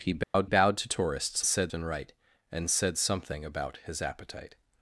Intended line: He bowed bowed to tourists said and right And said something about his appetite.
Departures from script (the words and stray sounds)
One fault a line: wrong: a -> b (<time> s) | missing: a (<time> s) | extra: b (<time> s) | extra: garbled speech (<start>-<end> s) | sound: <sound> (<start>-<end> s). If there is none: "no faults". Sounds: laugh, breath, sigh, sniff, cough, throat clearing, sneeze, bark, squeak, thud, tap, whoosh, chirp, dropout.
sound: dropout (0.2-0.3 s)